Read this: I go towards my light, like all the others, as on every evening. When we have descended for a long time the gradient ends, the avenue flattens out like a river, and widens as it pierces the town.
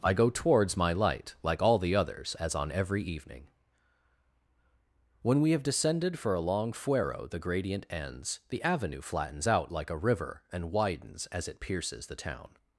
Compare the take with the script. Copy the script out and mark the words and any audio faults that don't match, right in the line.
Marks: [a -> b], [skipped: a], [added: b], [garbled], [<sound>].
I go towards my light, like all the others, as on every evening. When we have descended for a long [time -> fuero] the gradient ends, the avenue flattens out like a river, and widens as it pierces the town.